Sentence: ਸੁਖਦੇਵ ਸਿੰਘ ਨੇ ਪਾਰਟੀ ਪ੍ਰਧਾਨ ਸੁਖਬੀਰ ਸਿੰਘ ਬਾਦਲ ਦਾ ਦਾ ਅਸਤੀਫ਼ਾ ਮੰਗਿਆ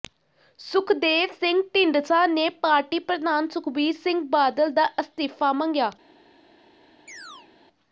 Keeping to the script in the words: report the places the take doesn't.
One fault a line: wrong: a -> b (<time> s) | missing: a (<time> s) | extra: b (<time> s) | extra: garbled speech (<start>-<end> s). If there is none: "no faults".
extra: ਢੀਂਡਸਾ (1.8 s)
missing: ਦਾ (4.9 s)